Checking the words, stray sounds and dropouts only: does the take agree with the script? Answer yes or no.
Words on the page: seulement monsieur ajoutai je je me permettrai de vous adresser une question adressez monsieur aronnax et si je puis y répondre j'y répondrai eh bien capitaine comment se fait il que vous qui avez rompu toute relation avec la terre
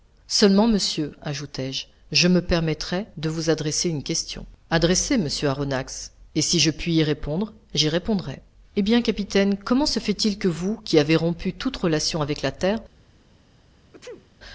no